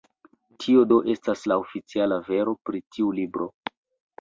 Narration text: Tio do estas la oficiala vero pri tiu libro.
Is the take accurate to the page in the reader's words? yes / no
yes